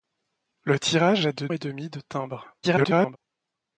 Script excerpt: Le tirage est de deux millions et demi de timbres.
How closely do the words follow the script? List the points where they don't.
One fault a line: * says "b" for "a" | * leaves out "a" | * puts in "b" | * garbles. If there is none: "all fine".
* leaves out "deux millions"
* garbles